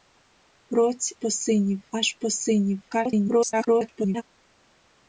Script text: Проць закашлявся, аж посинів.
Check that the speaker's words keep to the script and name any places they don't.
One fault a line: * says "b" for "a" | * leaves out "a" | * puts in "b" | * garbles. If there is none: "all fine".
* says "посинів" for "закашлявся"
* garbles